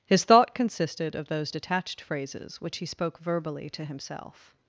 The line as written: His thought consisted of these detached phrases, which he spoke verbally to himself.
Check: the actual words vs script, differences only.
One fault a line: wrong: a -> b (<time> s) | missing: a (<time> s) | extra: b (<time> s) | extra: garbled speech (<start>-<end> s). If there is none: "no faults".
wrong: these -> those (1.3 s)